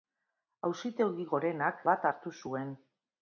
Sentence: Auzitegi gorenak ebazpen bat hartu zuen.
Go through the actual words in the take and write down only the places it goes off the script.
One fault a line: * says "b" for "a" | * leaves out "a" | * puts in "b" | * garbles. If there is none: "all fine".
* leaves out "ebazpen"